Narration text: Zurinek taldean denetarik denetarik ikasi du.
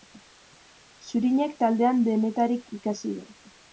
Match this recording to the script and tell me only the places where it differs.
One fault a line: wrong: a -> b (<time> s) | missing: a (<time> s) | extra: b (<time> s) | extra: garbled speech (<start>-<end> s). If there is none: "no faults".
missing: denetarik (2.7 s)